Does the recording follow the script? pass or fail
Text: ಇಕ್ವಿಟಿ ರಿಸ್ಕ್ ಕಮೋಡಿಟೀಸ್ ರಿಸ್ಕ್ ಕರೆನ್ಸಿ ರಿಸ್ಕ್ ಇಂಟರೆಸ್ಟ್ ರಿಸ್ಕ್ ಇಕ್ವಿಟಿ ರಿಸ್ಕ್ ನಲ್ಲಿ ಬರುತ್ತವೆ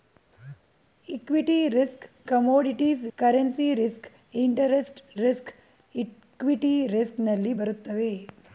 fail